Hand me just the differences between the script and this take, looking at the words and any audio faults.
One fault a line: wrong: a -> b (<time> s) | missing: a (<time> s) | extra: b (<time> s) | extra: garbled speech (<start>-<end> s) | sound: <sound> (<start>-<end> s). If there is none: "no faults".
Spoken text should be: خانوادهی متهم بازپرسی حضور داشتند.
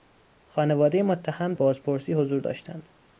no faults